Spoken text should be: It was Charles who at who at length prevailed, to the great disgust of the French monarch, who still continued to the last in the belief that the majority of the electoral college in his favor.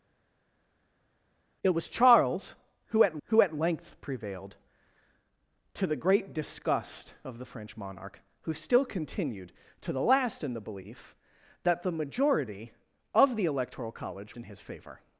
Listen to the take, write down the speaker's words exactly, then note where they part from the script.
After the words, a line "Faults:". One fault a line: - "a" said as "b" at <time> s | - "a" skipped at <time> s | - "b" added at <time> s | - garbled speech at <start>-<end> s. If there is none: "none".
It was Charles who at who at length prevailed, to the great disgust of the French monarch, who still continued to the last in the belief that the majority of the electoral college in his favor.
Faults:
none